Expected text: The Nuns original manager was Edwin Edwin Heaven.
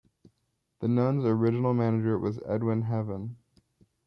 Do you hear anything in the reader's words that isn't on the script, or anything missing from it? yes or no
yes